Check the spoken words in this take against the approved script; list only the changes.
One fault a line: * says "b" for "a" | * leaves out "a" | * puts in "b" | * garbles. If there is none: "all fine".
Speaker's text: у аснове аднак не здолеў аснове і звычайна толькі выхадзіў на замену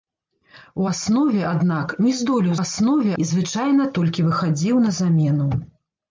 all fine